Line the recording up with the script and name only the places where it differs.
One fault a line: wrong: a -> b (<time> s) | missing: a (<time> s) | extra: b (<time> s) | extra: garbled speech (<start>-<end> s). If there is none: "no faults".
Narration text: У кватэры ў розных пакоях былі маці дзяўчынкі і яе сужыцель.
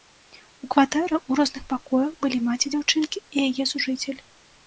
no faults